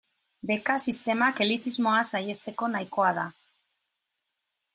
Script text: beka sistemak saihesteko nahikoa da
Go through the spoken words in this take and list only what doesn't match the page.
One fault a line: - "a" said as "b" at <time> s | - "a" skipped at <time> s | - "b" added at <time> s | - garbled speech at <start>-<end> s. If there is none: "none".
- "elitismoa" added at 1.5 s